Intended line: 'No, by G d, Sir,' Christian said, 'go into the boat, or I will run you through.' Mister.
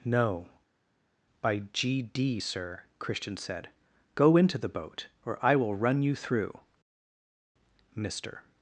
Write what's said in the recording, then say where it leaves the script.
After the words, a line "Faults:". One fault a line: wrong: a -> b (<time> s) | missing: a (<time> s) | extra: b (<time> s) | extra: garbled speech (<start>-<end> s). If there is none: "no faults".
'No, by G d, Sir,' Christian said, 'go into the boat, or I will run you through.' Mister.
Faults:
no faults